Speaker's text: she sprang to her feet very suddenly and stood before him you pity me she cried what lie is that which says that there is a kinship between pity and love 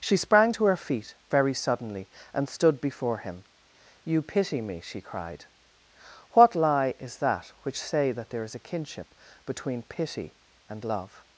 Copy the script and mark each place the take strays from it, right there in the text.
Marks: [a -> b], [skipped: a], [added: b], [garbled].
she sprang to her feet very suddenly and stood before him you pity me she cried what lie is that which [says -> say] that there is a kinship between pity and love